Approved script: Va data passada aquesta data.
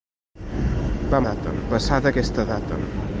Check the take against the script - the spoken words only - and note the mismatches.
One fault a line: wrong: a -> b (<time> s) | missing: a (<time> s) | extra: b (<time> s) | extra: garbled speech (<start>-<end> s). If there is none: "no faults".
no faults